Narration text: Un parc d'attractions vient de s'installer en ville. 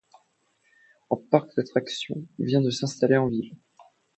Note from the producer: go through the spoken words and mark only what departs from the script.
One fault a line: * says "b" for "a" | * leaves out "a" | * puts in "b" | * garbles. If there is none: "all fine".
all fine